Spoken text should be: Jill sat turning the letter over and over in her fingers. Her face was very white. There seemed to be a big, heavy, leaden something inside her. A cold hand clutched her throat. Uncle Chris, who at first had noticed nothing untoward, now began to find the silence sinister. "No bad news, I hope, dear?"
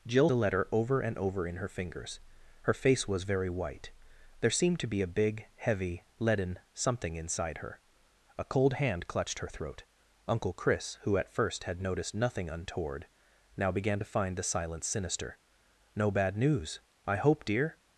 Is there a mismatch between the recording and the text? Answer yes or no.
yes